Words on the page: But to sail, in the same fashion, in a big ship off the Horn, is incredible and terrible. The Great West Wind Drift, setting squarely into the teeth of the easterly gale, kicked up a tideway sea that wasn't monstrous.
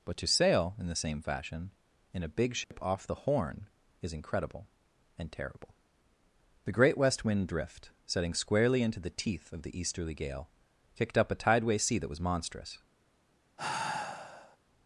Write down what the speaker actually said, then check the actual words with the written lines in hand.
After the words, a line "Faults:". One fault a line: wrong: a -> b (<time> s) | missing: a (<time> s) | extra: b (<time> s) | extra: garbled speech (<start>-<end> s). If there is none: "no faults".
But to sail, in the same fashion, in a big ship off the Horn, is incredible and terrible. The Great West Wind Drift, setting squarely into the teeth of the easterly gale, kicked up a tideway sea that was monstrous.
Faults:
wrong: wasn't -> was (12.1 s)